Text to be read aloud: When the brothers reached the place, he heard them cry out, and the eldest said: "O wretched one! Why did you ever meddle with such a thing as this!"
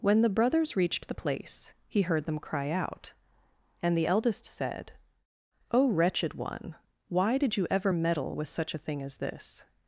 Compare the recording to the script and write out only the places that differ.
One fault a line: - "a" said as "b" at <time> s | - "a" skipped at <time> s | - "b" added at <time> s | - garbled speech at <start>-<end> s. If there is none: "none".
none